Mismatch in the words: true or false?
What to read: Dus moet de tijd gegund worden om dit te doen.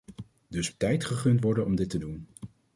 true